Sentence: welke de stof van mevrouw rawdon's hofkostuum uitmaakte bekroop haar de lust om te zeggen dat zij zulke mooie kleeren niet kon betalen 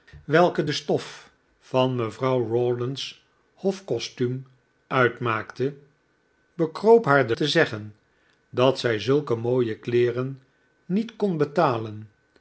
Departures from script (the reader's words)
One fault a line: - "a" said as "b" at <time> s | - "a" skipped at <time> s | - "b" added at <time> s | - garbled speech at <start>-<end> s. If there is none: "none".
- "lust om" skipped at 7.3 s